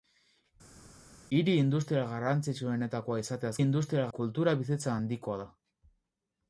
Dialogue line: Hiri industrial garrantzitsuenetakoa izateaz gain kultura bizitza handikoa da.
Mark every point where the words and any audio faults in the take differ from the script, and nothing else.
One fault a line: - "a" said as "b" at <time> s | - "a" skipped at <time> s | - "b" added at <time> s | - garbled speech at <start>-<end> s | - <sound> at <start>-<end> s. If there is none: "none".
- "gain" said as "industrial" at 3.6 s